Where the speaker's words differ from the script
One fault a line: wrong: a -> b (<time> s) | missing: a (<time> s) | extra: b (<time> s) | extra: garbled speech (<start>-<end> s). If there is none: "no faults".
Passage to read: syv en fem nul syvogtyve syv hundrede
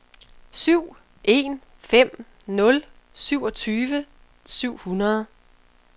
no faults